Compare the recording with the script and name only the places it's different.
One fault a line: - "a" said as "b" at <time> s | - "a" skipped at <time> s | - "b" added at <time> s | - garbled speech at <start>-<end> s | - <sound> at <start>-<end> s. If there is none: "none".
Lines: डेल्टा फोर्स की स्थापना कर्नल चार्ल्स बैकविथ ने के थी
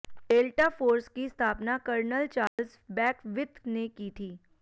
- dropout at 2.5-2.6 s
- "के" said as "की" at 3.9 s